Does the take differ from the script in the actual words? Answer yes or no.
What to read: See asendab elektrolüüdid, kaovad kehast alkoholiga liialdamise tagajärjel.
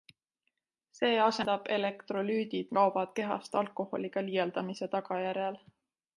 no